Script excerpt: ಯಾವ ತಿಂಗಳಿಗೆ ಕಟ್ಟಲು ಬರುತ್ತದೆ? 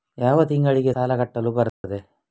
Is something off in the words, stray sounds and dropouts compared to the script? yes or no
yes